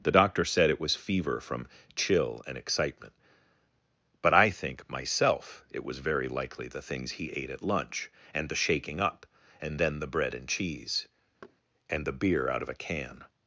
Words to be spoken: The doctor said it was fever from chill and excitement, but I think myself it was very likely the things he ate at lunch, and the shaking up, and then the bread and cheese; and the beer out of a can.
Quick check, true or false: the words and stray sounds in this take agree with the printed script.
false